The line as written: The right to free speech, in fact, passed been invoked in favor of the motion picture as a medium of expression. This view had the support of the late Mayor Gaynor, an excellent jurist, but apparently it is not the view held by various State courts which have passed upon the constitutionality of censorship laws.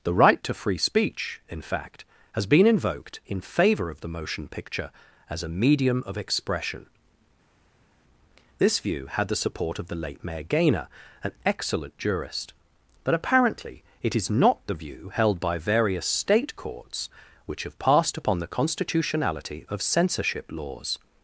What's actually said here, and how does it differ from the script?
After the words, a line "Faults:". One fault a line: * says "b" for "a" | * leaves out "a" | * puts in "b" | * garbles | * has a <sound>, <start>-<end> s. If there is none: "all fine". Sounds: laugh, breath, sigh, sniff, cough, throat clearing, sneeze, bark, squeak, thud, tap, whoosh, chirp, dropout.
The right to free speech, in fact, has been invoked in favor of the motion picture as a medium of expression. This view had the support of the late Mayor Gaynor, an excellent jurist, but apparently it is not the view held by various State courts which have passed upon the constitutionality of censorship laws.
Faults:
* says "has" for "passed"